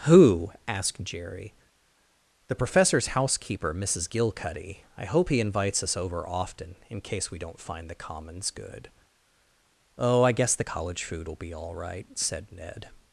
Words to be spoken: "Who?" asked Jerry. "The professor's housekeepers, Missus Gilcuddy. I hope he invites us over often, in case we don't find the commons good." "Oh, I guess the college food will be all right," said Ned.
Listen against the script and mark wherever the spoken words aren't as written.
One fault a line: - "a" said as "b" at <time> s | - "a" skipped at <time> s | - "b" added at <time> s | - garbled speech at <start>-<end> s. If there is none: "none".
- "housekeepers" said as "housekeeper" at 3.1 s